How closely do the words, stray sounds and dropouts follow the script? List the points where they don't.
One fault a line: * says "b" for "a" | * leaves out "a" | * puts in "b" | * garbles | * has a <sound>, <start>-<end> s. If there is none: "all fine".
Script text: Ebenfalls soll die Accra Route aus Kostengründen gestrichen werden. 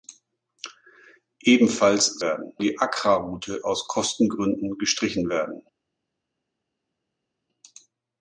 * says "werden" for "soll"